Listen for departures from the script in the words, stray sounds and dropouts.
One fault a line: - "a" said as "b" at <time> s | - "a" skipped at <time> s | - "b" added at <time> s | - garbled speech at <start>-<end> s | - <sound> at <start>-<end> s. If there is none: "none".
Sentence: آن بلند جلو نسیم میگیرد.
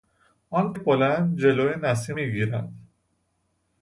none